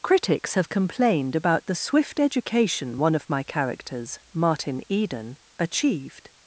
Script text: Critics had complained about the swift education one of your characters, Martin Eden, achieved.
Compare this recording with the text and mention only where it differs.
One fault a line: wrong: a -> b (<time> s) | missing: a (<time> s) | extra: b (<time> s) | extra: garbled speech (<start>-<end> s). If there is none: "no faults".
wrong: had -> have (0.6 s)
wrong: your -> my (3.3 s)